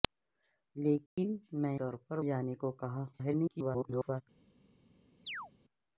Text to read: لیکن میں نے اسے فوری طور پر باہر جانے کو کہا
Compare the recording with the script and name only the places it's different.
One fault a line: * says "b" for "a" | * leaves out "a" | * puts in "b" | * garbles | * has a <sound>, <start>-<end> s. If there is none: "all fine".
* has a dropout, 1.1-1.2 s
* leaves out "نے اسے فوری"
* leaves out "باہر"
* garbles
* has a chirp, 5.2-5.5 s